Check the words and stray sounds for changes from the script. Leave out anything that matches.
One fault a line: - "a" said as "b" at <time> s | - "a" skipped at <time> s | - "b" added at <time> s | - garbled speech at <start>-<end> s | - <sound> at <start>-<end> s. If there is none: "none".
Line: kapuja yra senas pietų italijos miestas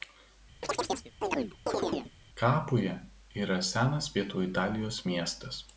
- chirp at 0.6-2.1 s